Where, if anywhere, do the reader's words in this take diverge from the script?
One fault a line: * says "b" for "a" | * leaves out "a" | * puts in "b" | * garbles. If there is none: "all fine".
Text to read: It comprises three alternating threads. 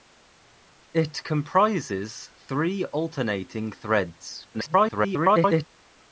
* garbles